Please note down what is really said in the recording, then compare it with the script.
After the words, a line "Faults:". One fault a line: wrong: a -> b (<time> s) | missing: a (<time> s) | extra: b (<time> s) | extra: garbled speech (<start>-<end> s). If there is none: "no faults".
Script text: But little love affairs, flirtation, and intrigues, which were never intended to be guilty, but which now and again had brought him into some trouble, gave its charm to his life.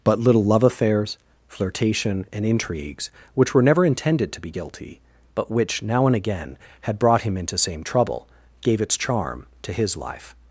But little love affairs, flirtation, and intrigues, which were never intended to be guilty, but which now and again had brought him into same trouble, gave its charm to his life.
Faults:
wrong: some -> same (7.6 s)